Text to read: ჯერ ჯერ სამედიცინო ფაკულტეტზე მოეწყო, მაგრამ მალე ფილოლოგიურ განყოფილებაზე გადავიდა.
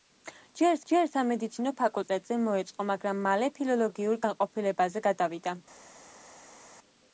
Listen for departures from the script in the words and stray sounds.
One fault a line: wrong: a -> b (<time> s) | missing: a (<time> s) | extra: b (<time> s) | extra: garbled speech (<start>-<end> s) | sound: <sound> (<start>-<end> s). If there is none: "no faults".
no faults